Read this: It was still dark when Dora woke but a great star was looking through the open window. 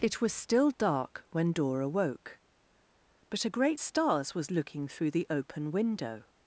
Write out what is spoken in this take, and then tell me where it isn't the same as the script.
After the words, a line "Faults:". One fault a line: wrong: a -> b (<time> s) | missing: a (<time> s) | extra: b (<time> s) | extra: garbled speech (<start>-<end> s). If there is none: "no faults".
It was still dark when Dora woke but a great stars was looking through the open window.
Faults:
wrong: star -> stars (3.8 s)